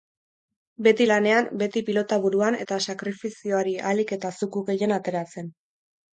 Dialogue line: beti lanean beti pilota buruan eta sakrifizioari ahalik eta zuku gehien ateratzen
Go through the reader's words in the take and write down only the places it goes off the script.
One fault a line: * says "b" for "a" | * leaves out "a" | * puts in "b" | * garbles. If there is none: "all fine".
all fine